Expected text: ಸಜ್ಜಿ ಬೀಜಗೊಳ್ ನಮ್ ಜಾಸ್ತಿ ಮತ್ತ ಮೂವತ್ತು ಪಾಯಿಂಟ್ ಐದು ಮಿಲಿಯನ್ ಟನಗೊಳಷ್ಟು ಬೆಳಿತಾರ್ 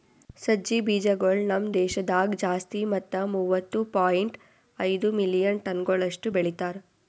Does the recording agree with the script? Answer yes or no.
no